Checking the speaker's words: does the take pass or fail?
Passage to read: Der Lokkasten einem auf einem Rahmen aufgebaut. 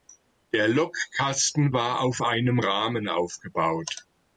fail